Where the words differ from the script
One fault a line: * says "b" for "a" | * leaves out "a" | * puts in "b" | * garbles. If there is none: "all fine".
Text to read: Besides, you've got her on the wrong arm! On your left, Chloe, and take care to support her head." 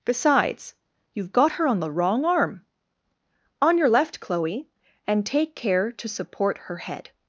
all fine